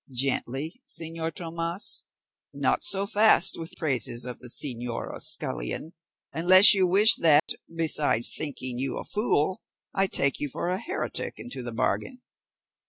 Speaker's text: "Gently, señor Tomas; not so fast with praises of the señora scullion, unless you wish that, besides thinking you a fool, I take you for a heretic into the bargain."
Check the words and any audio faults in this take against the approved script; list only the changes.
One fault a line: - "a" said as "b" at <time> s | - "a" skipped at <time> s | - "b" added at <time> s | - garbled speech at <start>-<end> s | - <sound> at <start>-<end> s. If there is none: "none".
- dropout at 7.4-7.5 s